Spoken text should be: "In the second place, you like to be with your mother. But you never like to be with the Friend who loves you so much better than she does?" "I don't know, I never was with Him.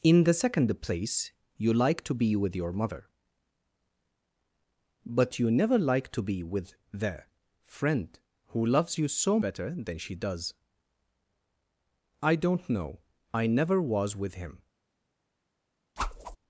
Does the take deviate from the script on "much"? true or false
true